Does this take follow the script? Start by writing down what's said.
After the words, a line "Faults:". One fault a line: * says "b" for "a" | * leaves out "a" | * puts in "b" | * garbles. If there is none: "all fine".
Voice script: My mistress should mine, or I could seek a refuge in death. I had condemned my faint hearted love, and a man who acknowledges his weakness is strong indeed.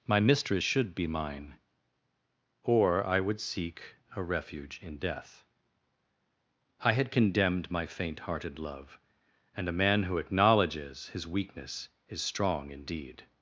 My mistress should be mine, or I would seek a refuge in death. I had condemned my faint hearted love, and a man who acknowledges his weakness is strong indeed.
Faults:
* puts in "be"
* says "would" for "could"